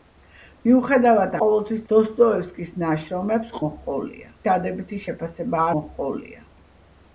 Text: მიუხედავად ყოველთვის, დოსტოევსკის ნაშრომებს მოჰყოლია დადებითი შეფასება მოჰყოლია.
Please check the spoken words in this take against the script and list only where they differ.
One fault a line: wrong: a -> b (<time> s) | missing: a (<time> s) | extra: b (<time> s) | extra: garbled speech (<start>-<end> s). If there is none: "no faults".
no faults